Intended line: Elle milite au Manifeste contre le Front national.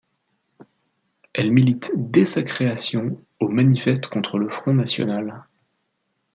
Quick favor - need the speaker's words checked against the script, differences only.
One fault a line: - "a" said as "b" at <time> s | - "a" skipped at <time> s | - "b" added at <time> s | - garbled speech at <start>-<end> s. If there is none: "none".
- "dès sa création" added at 2.0 s